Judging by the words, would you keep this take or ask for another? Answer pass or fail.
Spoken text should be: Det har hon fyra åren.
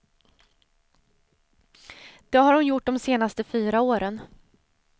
fail